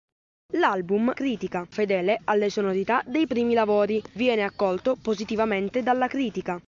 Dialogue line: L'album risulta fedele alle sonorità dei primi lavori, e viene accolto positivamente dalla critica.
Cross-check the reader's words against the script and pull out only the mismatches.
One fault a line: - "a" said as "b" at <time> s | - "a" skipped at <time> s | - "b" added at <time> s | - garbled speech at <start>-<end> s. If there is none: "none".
- "risulta" said as "critica" at 1.1 s
- "e" skipped at 4.0 s